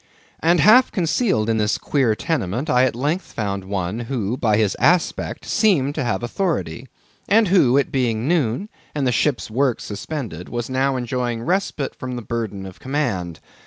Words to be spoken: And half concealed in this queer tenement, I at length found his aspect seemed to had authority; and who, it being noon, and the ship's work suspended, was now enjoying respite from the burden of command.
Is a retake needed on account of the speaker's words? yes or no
yes